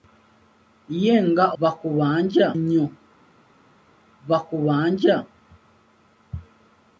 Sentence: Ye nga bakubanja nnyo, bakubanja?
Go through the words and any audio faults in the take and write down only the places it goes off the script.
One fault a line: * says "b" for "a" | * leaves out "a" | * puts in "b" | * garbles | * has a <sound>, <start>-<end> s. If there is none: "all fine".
all fine